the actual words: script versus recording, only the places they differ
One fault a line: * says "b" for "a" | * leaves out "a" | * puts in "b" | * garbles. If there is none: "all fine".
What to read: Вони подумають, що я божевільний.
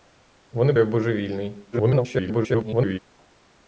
* leaves out "подумають що"
* garbles